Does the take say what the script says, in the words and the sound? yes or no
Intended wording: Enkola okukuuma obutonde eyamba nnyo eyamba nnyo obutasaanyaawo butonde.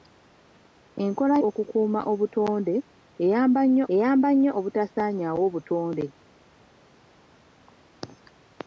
yes